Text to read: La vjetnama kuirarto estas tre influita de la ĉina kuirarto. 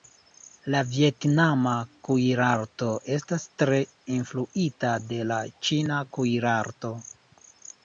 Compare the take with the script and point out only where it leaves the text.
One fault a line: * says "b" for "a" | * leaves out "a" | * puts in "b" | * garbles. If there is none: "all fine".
all fine